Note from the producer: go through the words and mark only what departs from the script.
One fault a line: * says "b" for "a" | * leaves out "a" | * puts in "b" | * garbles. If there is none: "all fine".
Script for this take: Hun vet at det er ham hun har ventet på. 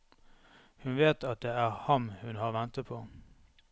all fine